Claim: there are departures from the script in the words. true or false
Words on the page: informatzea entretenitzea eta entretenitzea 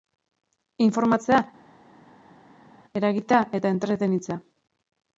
true